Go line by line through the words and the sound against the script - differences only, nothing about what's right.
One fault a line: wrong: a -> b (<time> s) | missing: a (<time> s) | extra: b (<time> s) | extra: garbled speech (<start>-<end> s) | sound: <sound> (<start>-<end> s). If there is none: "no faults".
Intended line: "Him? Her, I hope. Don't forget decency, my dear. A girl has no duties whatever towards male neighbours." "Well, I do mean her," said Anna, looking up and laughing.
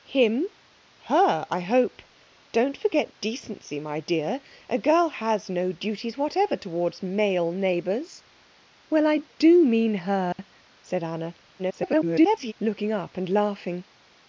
sound: dropout (10.3-10.4 s)
extra: garbled speech (11.6-12.5 s)